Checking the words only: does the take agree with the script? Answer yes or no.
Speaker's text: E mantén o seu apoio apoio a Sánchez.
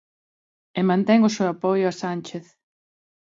no